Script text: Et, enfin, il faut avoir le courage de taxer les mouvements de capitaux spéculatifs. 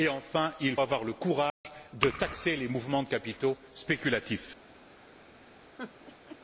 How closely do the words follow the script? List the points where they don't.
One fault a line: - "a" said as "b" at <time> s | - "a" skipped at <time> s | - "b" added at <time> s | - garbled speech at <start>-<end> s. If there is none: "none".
- "faut" skipped at 0.8 s